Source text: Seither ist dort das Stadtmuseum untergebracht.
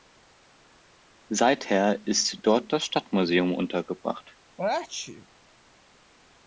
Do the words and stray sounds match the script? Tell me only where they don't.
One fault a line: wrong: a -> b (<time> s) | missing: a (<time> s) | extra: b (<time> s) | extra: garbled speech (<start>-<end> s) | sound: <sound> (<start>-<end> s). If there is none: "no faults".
sound: sneeze (4.6-5.3 s)